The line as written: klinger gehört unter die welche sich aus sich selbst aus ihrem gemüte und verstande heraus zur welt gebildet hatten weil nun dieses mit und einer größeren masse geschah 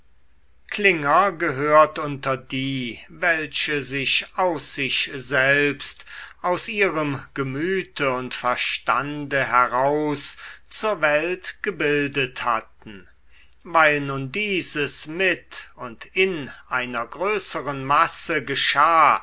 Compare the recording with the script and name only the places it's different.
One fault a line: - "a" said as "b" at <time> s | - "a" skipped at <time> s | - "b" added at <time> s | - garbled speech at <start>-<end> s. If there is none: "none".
- "in" added at 16.1 s